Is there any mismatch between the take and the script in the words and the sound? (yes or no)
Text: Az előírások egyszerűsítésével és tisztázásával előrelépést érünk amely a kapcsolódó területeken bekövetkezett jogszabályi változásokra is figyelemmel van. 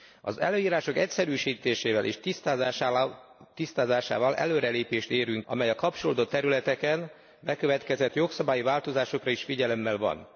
no